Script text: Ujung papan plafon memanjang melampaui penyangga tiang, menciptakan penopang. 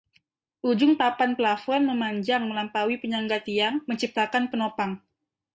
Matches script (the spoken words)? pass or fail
pass